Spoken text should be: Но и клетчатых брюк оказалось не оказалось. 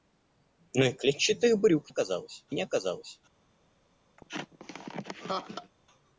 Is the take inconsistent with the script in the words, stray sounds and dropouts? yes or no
yes